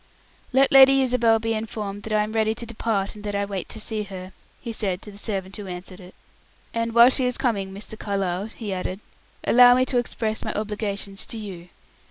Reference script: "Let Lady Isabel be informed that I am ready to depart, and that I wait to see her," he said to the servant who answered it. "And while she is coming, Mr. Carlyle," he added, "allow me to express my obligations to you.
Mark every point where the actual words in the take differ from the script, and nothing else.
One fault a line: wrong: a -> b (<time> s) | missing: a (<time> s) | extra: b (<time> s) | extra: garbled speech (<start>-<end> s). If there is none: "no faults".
no faults